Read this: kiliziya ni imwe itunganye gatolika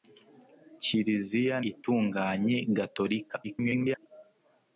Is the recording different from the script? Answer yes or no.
yes